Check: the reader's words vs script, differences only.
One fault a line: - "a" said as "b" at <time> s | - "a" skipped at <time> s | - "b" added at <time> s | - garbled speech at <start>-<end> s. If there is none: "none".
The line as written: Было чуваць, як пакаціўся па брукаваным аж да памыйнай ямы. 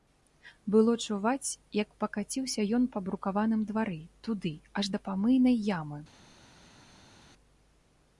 - "ён" added at 2.8 s
- "двары туды" added at 3.7 s